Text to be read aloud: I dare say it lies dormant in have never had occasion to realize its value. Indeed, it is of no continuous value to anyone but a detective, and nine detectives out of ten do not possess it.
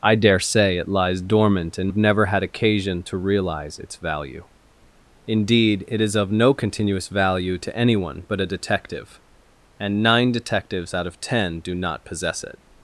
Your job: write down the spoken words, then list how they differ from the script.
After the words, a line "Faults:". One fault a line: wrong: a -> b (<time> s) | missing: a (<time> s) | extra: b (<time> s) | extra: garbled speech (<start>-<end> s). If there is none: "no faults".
I dare say it lies dormant in have never had occasion to realize its value. Indeed, it is of no continuous value to anyone but a detective, and nine detectives out of ten do not possess it.
Faults:
no faults